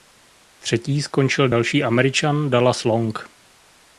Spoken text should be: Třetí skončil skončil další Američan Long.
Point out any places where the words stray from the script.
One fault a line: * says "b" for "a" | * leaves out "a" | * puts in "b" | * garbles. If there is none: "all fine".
* leaves out "skončil"
* puts in "Dallas"